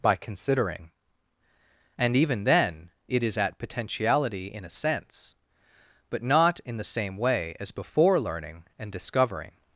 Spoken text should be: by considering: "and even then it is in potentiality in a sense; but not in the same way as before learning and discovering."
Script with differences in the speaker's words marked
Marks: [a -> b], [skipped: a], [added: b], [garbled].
by considering: "and even then it is [in -> at] potentiality in a sense; but not in the same way as before learning and discovering."